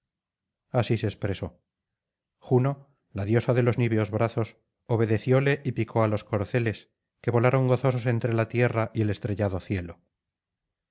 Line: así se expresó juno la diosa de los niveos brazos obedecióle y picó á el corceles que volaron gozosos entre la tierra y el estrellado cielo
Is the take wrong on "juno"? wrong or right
right